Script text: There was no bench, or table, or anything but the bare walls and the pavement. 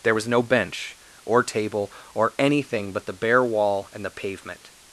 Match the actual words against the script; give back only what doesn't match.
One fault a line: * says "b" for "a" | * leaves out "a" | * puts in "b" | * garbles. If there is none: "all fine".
* says "wall" for "walls"